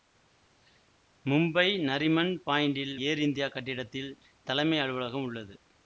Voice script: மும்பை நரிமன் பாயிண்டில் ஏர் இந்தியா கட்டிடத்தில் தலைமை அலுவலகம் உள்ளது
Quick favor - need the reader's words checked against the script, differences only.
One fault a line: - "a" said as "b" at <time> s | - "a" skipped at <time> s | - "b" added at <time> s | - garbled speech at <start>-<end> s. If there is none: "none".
none